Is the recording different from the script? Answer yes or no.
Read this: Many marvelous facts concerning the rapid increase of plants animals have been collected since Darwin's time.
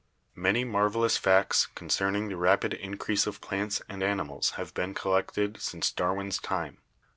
yes